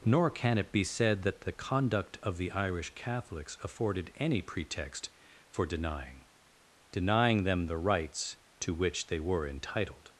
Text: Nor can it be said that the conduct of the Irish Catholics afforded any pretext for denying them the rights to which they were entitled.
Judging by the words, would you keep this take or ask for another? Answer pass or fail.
fail